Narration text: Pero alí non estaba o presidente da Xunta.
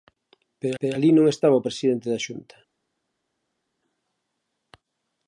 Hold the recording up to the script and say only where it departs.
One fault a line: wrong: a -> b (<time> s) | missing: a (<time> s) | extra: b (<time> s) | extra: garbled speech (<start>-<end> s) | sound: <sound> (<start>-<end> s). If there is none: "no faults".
extra: pero (0.8 s)